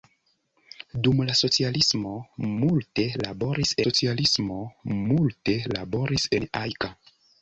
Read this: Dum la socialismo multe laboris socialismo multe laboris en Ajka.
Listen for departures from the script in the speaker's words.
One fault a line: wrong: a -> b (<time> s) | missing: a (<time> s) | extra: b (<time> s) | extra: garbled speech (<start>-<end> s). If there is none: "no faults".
no faults